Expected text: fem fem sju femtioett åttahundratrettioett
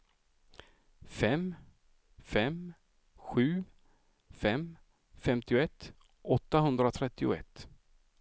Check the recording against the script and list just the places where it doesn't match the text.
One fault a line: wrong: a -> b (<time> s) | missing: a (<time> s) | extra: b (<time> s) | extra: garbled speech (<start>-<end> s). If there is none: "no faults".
extra: fem (4.3 s)